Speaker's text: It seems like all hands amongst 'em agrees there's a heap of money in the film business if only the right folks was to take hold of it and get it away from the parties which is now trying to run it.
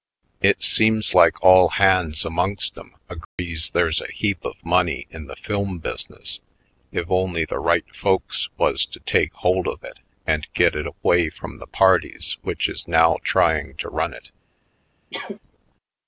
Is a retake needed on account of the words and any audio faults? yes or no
yes